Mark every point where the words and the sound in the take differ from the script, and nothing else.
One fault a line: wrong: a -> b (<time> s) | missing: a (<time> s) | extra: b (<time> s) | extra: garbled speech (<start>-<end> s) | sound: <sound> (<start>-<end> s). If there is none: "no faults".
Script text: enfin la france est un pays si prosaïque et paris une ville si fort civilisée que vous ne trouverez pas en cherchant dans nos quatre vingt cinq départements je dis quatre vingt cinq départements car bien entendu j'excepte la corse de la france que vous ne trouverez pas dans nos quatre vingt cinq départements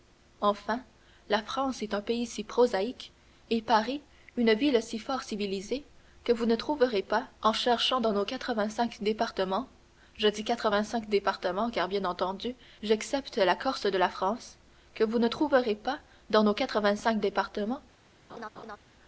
sound: laugh (18.3-18.8 s)